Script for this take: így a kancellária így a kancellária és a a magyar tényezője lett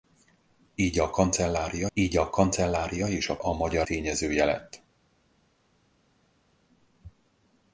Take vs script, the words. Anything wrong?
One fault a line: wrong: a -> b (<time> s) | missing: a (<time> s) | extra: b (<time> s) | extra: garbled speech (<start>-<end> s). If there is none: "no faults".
no faults